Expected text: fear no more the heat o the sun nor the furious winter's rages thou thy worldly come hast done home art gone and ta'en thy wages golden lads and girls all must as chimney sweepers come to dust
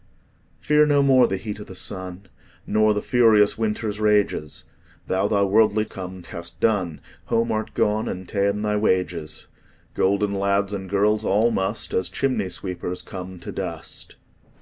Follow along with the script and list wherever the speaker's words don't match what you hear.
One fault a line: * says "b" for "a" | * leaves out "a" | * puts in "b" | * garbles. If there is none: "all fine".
all fine